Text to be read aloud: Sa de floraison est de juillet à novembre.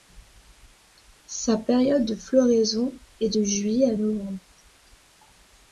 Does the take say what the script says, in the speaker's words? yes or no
no